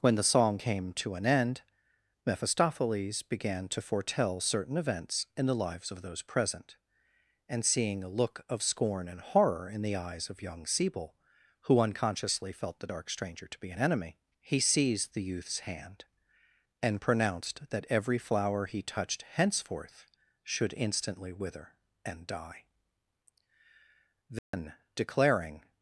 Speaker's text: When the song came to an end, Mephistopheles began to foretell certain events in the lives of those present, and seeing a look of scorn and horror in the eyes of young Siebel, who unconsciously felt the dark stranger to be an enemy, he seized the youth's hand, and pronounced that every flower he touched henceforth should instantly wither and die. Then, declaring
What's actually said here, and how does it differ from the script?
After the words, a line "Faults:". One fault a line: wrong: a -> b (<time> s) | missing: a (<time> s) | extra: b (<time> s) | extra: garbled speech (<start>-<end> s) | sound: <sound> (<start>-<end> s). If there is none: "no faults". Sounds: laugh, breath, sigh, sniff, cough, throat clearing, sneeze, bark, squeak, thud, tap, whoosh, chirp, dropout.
When the song came to an end, Mephistopheles began to foretell certain events in the lives of those present, and seeing a look of scorn and horror in the eyes of young Siebel, who unconsciously felt the dark stranger to be an enemy, he seized the youth's hand, and pronounced that every flower he touched henceforth should instantly wither and die. Then, declaring
Faults:
sound: dropout (24.4-24.5 s)